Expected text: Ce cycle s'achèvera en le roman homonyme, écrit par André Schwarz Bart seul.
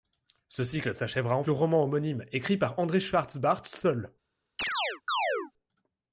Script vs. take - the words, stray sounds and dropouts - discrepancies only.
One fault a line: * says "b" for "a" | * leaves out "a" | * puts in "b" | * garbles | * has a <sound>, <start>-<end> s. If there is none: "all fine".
* has a chirp, 4.6-5.5 s